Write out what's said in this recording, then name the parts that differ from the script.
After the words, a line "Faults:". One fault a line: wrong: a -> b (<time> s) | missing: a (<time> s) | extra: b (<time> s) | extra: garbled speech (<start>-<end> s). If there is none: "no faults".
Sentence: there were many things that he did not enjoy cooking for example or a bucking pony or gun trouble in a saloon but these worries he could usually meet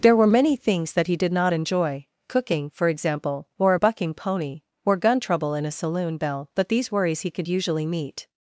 there were many things that he did not enjoy cooking for example or a bucking pony or gun trouble in a saloon bell but these worries he could usually meet
Faults:
extra: bell (6.2 s)